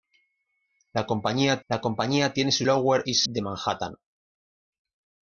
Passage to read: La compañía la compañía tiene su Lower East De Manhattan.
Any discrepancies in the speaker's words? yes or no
no